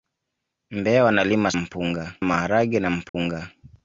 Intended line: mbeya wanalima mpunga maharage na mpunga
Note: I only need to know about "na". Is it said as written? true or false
true